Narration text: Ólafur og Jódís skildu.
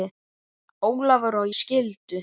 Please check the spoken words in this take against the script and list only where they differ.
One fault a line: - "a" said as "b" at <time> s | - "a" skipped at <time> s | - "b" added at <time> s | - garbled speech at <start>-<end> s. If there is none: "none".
- "Jódís" skipped at 1.5 s